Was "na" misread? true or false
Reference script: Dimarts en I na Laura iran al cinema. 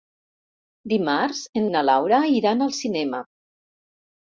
false